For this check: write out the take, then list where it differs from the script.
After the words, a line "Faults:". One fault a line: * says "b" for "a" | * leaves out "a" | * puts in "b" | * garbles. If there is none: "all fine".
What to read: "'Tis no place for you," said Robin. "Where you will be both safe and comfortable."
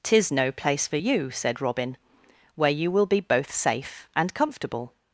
"'Tis no place for you," said Robin. "Where you will be both safe and comfortable."
Faults:
all fine